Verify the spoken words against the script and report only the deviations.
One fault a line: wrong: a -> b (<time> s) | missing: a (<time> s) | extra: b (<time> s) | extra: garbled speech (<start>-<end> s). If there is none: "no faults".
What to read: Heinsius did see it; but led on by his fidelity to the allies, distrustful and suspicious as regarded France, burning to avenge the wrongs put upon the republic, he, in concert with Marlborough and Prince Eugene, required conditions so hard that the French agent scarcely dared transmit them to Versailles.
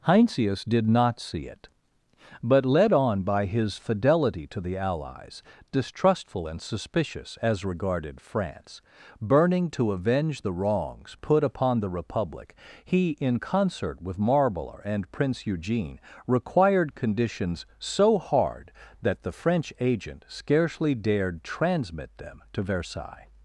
extra: not (0.9 s)